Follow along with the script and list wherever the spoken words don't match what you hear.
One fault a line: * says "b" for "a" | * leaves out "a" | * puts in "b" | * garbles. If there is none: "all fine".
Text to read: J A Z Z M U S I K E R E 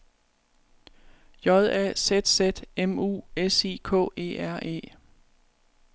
all fine